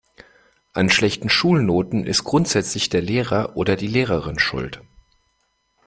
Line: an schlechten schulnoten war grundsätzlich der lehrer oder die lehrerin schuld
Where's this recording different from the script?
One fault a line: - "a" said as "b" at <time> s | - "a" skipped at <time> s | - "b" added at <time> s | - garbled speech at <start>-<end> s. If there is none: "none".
- "war" said as "ist" at 2.1 s